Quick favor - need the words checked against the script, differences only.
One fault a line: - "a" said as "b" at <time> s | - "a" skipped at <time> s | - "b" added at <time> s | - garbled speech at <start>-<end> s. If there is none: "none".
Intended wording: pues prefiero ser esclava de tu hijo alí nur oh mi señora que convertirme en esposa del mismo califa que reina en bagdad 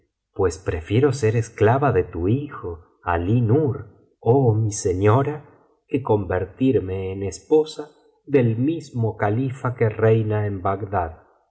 none